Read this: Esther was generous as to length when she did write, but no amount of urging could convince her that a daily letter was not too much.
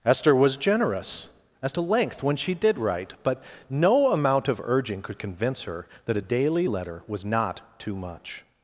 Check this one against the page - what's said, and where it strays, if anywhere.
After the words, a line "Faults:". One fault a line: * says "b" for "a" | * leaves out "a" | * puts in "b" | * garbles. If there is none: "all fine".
Esther was generous as to length when she did write, but no amount of urging could convince her that a daily letter was not too much.
Faults:
all fine